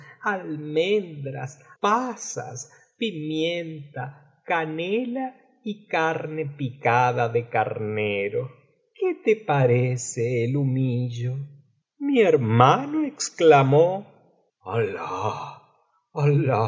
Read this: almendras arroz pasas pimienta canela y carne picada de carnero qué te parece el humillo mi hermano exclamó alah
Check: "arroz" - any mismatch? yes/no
yes